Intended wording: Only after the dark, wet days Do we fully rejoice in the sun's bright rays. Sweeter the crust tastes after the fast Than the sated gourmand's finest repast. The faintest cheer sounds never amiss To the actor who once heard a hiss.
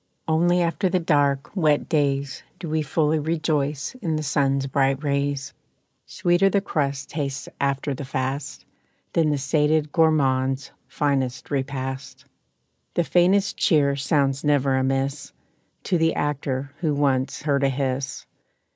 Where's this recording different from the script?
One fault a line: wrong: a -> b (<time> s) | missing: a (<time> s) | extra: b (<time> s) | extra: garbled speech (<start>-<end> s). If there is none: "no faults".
no faults